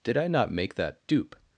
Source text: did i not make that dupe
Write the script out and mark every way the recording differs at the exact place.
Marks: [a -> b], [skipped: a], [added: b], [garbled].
did i not make that dupe